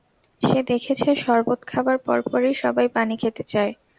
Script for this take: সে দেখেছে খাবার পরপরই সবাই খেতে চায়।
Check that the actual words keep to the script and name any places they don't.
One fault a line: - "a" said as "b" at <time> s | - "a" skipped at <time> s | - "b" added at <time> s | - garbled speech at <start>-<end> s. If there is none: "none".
- "শরবত" added at 1.2 s
- "পানি" added at 3.0 s